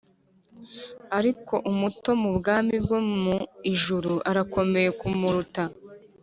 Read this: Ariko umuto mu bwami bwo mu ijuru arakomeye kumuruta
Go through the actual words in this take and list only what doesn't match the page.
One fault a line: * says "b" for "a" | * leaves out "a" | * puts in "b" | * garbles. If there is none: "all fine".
all fine